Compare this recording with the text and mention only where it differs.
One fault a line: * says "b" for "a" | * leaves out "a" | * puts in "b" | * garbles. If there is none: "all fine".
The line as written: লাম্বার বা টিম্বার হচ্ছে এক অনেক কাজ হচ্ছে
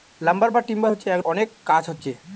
all fine